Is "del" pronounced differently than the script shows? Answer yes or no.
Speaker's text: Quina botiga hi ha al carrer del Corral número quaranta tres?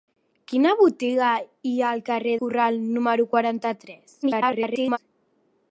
yes